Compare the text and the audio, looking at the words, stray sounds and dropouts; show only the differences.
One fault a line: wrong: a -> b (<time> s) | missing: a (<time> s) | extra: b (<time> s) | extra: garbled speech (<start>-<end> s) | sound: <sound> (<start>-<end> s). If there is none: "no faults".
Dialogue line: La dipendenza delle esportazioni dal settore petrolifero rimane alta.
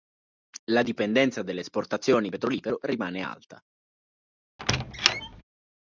missing: dal settore (2.3 s)
sound: squeak (4.6-5.4 s)